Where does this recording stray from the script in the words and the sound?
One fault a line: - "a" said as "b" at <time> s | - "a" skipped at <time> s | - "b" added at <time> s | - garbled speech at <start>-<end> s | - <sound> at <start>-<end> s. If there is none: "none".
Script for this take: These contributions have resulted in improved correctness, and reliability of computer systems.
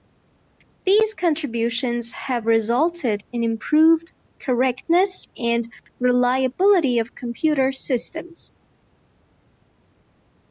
none